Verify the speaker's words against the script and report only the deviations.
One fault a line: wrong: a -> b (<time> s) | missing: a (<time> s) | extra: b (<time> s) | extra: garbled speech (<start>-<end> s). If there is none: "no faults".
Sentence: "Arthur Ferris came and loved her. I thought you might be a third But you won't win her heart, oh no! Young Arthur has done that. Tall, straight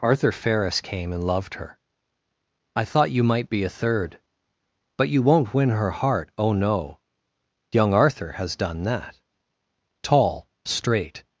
no faults